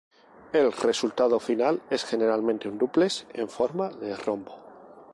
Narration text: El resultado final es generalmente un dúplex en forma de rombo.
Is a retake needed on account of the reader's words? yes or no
no